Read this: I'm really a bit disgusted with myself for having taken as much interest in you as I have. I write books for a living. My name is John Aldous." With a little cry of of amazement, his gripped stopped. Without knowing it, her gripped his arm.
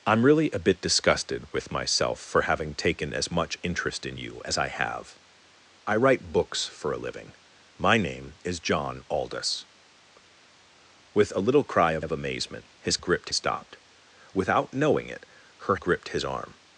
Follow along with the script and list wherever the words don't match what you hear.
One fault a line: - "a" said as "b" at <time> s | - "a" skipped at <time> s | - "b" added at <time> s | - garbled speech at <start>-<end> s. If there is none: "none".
none